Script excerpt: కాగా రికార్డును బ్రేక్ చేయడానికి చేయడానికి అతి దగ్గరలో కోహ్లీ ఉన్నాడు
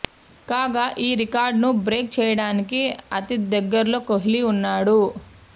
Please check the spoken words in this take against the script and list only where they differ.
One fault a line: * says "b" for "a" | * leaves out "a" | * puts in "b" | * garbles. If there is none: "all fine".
* puts in "ఈ"
* leaves out "చేయడానికి"